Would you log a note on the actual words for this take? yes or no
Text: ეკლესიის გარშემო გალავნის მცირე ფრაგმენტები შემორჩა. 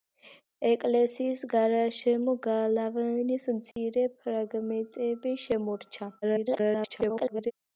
yes